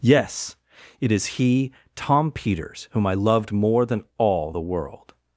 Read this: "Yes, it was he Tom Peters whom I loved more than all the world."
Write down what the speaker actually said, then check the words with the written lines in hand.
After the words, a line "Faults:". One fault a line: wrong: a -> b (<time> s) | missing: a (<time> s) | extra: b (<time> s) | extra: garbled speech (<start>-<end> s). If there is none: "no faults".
"Yes, it is he Tom Peters whom I loved more than all the world."
Faults:
wrong: was -> is (1.1 s)